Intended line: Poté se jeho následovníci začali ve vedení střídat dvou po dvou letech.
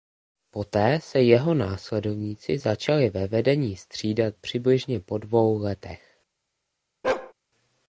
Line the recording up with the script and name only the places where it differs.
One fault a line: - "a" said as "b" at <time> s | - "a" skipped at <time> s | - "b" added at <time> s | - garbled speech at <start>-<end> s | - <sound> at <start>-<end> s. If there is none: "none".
- "dvou" said as "přibližně" at 4.4 s
- bark at 7.0-7.3 s